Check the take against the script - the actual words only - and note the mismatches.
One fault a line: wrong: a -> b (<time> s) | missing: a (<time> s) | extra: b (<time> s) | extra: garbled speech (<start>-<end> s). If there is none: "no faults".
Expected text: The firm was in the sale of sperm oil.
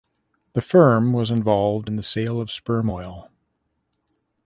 extra: involved (1.3 s)